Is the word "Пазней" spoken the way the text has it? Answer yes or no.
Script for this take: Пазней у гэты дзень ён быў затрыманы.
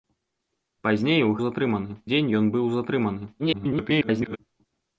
yes